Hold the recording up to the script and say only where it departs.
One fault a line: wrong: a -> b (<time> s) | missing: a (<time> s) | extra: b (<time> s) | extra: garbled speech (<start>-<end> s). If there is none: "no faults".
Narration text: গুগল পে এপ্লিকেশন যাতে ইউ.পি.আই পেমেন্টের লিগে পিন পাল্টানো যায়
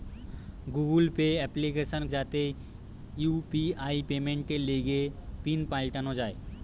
no faults